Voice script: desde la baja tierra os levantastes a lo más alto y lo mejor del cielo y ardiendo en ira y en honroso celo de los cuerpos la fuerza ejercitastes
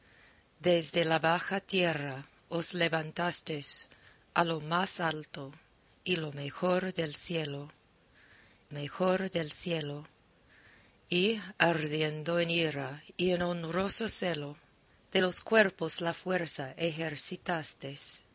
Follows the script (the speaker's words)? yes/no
no